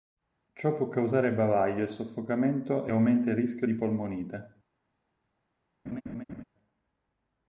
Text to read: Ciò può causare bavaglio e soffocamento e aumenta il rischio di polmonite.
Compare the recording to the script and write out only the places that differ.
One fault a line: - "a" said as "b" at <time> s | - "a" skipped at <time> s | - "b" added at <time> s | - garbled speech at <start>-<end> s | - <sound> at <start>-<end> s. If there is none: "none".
- laugh at 5.9-6.4 s